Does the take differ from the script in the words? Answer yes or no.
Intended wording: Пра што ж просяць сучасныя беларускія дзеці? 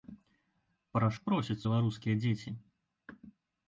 yes